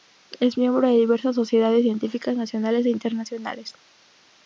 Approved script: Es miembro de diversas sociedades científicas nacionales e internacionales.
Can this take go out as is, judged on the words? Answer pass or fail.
pass